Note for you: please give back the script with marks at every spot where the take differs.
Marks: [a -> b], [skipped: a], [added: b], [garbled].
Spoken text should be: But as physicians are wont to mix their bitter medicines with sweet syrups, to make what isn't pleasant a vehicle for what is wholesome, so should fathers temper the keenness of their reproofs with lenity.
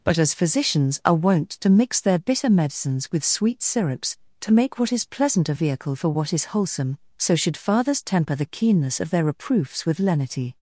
But as physicians are wont to mix their bitter medicines with sweet syrups, to make what [isn't -> is] pleasant a vehicle for what is wholesome, so should fathers temper the keenness of their reproofs with lenity.